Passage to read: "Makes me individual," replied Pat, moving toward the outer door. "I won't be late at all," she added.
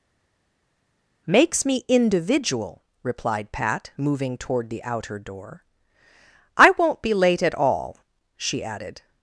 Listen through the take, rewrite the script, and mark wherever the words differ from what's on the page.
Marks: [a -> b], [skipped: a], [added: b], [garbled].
"Makes me individual," replied Pat, moving toward the outer door. "I won't be late at all," she added.